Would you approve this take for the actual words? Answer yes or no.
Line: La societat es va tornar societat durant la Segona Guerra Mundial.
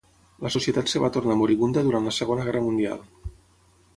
no